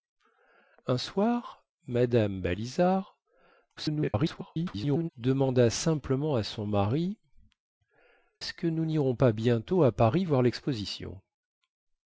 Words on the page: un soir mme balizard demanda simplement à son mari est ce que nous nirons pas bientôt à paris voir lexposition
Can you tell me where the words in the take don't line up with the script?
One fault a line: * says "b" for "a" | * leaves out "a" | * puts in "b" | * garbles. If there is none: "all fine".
* garbles
* leaves out "est"